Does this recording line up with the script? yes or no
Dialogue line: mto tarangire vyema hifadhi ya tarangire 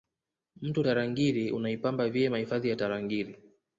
no